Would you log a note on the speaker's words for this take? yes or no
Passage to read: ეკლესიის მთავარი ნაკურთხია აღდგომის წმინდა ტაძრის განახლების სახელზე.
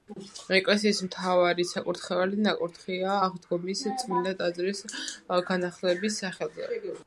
yes